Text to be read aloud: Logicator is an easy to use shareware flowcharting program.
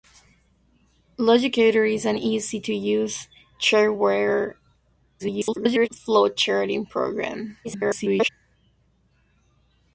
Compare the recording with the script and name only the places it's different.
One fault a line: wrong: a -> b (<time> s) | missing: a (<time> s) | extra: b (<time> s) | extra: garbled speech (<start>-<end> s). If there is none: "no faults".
extra: garbled speech (5.2-5.9 s)
extra: garbled speech (7.6-8.3 s)